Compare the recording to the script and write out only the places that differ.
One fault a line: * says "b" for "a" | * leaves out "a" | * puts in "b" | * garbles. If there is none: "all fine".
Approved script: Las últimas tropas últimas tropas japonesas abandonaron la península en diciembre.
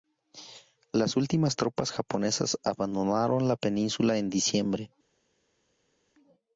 * leaves out "últimas tropas"